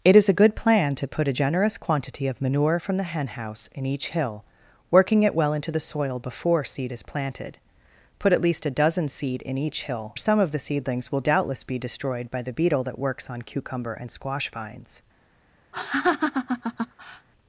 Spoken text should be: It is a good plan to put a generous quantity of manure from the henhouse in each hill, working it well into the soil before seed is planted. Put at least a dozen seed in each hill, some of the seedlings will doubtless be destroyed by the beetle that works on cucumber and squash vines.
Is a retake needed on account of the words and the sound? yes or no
yes